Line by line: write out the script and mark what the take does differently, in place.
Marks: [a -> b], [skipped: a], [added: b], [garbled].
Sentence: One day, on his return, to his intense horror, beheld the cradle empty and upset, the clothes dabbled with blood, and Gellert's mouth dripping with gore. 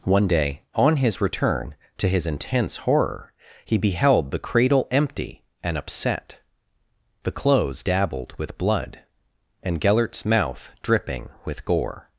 One day, on his return, to his intense horror, [added: he] beheld the cradle empty and upset, the clothes dabbled with blood, and Gellert's mouth dripping with gore.